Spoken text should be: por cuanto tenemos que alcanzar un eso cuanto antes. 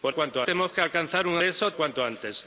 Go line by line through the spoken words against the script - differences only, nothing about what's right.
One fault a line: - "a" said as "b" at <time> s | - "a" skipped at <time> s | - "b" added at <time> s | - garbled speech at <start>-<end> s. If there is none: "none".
none